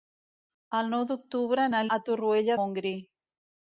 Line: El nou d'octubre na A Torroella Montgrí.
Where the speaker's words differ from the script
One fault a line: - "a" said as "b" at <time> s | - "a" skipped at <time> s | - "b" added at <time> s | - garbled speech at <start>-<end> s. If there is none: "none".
none